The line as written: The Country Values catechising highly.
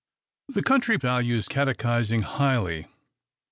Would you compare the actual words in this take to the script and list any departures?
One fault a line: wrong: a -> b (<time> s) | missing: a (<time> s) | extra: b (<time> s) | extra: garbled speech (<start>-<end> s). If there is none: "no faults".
no faults